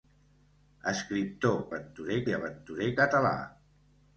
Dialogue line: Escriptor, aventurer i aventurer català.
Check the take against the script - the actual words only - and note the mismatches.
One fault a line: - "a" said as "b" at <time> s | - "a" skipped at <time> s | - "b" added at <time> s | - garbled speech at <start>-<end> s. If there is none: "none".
none